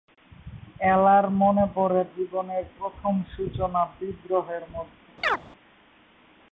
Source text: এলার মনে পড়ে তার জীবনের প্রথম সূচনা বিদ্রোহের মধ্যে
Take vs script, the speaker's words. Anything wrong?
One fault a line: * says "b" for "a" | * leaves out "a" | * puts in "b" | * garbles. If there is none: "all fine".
* leaves out "তার"